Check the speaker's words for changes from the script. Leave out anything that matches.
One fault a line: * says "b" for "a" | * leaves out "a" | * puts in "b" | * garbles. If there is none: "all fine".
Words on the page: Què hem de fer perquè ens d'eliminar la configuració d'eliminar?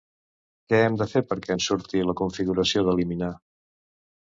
* says "surti" for "d'eliminar"